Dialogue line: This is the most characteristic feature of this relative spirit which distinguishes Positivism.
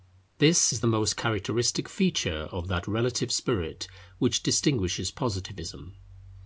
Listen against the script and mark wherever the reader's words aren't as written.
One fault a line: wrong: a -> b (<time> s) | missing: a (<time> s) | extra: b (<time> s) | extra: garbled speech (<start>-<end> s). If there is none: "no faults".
wrong: this -> that (2.7 s)